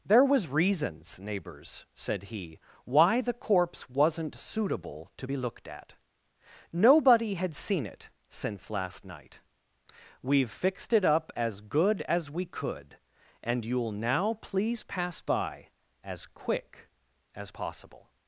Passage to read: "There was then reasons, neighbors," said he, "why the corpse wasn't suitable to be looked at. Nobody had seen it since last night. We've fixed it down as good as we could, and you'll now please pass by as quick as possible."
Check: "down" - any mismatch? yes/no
yes